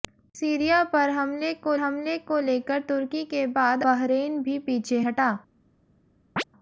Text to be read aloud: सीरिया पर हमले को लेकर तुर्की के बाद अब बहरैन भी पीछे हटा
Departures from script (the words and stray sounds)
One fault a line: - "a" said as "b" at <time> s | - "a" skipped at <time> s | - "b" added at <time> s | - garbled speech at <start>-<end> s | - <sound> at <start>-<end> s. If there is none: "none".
- "हमले को" added at 1.7 s
- "अब" skipped at 3.8 s
- chirp at 6.4-6.4 s